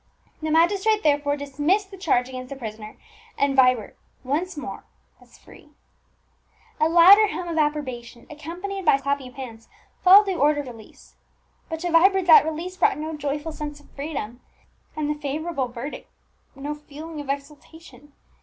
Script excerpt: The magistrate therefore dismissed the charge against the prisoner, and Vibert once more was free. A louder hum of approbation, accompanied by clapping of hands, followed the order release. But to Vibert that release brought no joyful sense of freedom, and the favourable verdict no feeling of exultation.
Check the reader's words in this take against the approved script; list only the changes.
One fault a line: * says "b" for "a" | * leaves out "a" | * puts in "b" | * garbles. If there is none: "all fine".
all fine